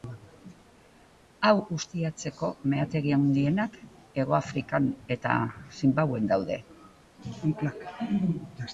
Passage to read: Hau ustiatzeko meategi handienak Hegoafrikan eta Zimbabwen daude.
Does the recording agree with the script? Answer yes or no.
yes